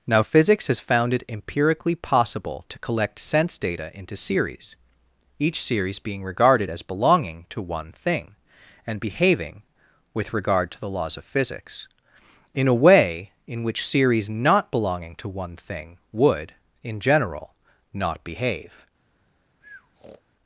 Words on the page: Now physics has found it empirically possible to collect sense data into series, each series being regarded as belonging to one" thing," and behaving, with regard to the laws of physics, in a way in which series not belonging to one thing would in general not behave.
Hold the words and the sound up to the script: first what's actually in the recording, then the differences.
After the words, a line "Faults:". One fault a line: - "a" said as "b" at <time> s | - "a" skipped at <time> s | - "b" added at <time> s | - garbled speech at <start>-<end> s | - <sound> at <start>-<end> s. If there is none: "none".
Now physics has found it empirically possible to collect sense data into series, each series being regarded as belonging to one" thing," and behaving, with regard to the laws of physics, in a way in which series not belonging to one thing would in general not behave.
Faults:
- breath at 19.6-20.2 s